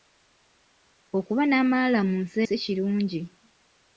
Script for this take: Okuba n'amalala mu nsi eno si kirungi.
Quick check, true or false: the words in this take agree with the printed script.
false